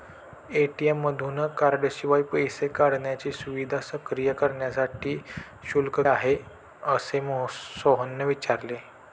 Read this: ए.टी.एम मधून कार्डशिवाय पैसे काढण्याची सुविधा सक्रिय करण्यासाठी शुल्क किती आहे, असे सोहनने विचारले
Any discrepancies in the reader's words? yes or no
yes